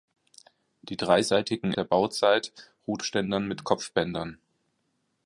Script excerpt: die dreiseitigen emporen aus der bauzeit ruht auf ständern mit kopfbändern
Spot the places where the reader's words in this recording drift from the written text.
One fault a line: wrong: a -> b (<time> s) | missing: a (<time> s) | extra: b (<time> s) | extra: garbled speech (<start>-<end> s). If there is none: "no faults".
missing: emporen aus (1.7 s)
missing: auf (3.0 s)